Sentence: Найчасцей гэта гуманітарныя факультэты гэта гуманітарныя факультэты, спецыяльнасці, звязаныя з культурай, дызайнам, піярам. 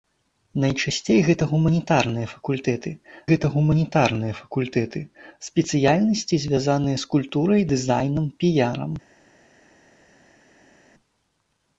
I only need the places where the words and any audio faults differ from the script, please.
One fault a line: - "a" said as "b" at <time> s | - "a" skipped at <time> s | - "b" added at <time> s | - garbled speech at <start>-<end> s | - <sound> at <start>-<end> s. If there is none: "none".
none